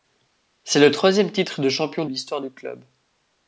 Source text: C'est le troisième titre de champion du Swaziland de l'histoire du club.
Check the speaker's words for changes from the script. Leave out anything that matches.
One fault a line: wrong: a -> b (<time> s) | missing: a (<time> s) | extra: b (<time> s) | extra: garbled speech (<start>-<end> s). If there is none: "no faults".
missing: du Swaziland de (2.0 s)